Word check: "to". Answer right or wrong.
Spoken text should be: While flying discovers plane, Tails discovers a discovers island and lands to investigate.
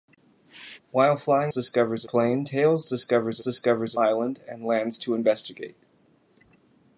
right